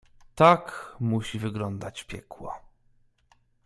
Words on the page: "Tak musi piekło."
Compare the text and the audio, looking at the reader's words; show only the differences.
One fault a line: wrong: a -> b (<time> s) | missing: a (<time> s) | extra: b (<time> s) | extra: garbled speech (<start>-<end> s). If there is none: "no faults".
extra: wyglądać (1.4 s)